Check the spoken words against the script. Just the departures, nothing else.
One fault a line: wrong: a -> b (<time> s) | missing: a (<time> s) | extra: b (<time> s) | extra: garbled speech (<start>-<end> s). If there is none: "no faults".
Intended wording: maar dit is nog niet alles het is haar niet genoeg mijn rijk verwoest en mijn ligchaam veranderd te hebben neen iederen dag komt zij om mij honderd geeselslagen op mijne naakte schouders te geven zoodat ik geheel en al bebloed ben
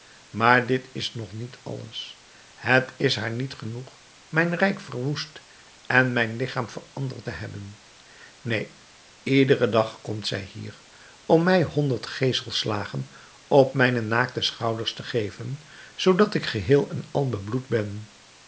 extra: hier (10.4 s)